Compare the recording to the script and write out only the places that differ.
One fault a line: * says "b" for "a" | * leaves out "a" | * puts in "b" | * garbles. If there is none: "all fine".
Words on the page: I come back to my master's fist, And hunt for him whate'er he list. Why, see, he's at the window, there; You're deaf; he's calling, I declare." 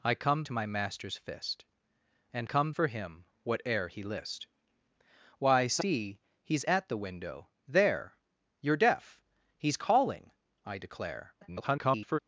* leaves out "back"
* says "come" for "hunt"
* garbles